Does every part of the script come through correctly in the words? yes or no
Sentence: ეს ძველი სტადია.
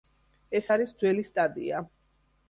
no